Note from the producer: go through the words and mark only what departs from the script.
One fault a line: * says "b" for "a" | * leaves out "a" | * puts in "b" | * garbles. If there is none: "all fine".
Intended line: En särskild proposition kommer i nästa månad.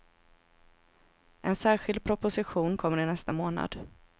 all fine